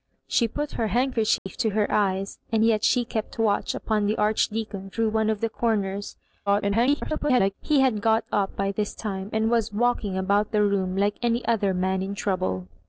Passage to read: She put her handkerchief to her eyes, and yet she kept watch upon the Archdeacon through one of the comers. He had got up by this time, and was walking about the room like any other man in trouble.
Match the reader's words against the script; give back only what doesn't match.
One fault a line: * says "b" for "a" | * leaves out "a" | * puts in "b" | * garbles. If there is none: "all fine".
* garbles